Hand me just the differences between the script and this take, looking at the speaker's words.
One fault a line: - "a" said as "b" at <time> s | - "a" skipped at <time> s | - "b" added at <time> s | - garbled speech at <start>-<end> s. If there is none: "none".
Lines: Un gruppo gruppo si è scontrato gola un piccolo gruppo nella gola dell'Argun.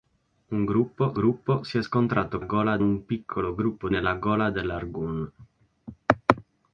none